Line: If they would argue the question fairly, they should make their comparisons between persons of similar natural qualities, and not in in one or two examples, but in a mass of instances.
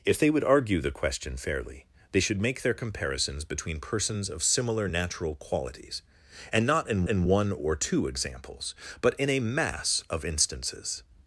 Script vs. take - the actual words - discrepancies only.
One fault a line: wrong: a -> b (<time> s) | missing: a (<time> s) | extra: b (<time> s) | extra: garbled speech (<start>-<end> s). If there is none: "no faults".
no faults